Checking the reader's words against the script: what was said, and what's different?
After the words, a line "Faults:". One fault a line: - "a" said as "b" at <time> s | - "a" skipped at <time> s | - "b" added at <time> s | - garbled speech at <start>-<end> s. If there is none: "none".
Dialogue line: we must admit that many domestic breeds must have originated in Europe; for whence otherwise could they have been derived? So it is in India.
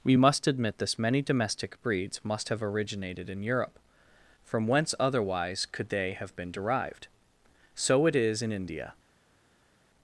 we must admit this many domestic breeds must have originated in Europe; from whence otherwise could they have been derived? So it is in India.
Faults:
- "that" said as "this" at 0.8 s
- "for" said as "from" at 4.5 s